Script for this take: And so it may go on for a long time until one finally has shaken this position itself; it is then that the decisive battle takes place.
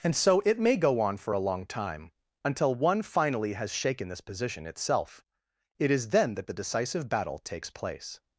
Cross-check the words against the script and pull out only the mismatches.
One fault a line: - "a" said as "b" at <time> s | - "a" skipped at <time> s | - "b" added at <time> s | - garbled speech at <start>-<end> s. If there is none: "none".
none